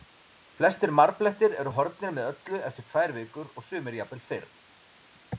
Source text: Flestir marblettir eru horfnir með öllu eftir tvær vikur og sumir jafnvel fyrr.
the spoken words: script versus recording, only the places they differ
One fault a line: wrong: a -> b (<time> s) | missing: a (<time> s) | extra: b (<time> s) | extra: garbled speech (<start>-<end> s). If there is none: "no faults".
no faults